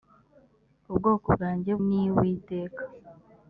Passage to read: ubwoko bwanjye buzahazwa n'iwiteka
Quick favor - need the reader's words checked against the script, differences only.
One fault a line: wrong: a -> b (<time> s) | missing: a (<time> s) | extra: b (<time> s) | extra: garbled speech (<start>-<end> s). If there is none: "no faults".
missing: buzahazwa (1.7 s)